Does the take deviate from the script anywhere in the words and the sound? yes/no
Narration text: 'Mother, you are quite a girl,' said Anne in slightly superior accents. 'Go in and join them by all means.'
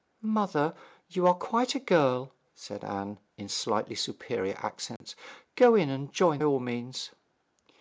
yes